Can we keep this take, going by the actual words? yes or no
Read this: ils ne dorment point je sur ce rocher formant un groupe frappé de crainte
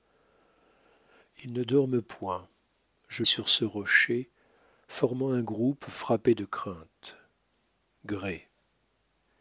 yes